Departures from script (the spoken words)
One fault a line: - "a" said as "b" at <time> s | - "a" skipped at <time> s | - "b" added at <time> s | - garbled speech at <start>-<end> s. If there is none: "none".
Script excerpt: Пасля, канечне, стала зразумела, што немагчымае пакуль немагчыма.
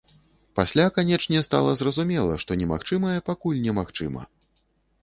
none